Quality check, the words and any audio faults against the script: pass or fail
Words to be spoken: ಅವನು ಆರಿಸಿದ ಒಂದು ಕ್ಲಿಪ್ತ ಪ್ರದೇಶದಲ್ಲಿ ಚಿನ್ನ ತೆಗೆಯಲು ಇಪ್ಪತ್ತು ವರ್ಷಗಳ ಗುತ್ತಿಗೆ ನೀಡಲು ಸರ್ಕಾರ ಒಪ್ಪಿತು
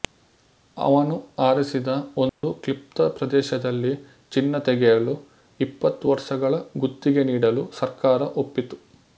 fail